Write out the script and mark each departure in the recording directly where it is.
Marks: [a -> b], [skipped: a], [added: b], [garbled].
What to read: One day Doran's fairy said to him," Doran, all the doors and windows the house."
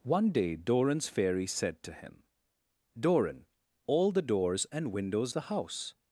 One day Doran's fairy said to him," Doran, all the doors and windows the house."